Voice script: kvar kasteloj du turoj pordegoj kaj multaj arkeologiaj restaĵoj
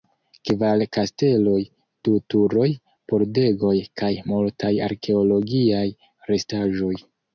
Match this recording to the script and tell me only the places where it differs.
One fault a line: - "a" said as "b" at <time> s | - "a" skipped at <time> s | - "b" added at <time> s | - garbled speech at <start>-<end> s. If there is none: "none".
none